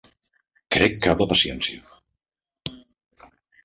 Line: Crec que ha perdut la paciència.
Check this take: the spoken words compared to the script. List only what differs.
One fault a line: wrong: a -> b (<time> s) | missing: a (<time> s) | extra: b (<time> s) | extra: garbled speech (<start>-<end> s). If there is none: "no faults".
missing: perdut (1.2 s)